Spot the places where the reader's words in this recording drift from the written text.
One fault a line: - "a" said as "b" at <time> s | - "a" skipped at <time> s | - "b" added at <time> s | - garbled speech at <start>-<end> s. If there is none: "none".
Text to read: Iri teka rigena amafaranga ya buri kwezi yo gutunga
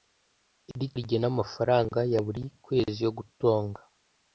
- "teka" skipped at 0.9 s